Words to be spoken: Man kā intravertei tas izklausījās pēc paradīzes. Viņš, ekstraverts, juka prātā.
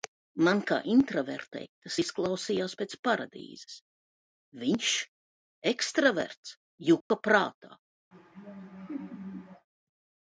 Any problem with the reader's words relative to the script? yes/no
no